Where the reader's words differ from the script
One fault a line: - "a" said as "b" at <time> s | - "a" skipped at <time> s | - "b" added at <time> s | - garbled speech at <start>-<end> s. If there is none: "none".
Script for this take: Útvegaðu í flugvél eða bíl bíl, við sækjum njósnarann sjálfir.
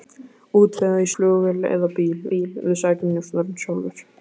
none